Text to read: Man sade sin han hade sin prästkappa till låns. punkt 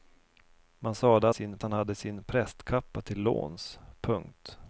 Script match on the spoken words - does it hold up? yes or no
yes